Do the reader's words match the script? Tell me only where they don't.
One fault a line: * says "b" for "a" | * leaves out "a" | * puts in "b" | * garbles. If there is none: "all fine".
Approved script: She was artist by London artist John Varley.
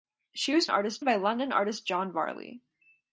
all fine